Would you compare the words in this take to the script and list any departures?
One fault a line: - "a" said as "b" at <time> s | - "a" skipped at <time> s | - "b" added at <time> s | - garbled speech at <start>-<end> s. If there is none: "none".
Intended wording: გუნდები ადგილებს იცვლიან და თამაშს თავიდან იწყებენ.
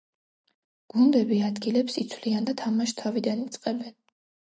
none